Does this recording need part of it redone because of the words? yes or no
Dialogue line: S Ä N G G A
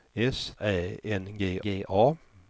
no